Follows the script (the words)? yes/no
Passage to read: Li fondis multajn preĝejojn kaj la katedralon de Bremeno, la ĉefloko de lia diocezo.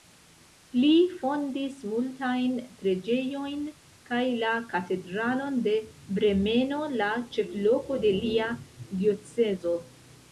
yes